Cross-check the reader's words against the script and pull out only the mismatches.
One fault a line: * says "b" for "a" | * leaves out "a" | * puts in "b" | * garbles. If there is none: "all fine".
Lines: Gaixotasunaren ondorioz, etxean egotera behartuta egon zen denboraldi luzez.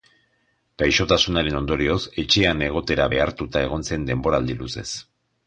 all fine